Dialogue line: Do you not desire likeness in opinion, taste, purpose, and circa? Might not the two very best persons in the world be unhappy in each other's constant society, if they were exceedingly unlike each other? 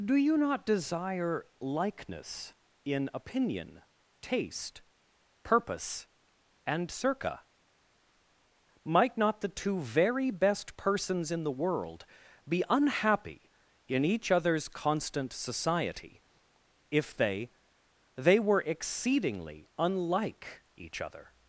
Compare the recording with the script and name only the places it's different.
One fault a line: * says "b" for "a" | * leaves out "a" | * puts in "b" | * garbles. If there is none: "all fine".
* puts in "they"